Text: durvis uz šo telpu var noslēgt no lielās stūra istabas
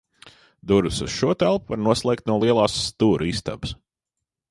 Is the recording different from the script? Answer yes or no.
no